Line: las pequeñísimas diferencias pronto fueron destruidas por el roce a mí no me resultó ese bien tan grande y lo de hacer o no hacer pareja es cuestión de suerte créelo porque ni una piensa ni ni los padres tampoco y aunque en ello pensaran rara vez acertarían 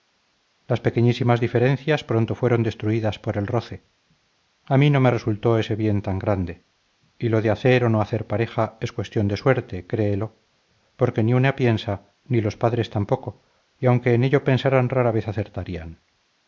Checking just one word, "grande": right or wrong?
right